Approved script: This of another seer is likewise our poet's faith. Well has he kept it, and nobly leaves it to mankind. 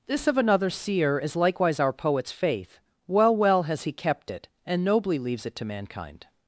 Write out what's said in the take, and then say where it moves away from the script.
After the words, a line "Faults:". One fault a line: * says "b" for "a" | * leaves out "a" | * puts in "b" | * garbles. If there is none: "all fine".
This of another seer is likewise our poet's faith. Well Well has he kept it, and nobly leaves it to mankind.
Faults:
* puts in "Well"